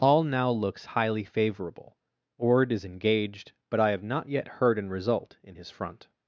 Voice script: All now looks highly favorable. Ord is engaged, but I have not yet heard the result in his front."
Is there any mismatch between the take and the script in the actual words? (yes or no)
yes